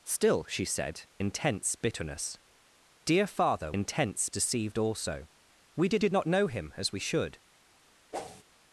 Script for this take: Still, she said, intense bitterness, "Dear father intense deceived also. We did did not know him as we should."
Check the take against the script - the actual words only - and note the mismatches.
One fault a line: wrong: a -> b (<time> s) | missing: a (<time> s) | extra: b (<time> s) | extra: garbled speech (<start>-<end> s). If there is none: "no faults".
no faults